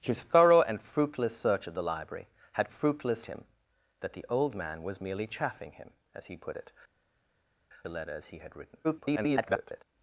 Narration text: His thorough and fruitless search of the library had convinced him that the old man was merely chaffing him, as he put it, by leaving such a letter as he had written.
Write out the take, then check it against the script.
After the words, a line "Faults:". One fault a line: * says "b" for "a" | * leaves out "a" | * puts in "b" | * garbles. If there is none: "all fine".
His thorough and fruitless search of the library had fruitless him that the old man was merely chaffing him, as he put it, a letter as he had written. [garbled]
Faults:
* says "fruitless" for "convinced"
* leaves out "by leaving such"
* garbles